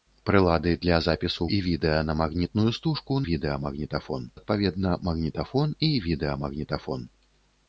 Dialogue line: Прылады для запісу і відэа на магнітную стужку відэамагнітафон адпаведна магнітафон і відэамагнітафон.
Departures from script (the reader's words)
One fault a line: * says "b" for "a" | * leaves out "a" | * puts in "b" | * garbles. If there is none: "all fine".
all fine